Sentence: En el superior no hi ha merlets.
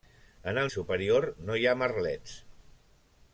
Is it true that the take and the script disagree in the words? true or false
false